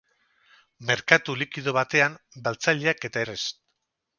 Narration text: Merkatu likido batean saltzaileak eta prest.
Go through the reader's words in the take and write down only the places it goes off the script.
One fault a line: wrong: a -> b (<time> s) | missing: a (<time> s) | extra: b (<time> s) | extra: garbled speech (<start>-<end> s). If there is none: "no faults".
no faults